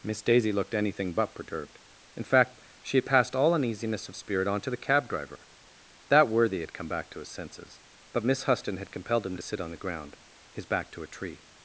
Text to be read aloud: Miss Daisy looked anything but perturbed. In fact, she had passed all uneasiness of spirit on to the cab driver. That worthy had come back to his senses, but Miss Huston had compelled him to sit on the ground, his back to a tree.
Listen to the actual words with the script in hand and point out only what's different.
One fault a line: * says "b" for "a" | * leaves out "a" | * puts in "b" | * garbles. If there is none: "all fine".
all fine